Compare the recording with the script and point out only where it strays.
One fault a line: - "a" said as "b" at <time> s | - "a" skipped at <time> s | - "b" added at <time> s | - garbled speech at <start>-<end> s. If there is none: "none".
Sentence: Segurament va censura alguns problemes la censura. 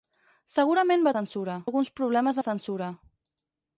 none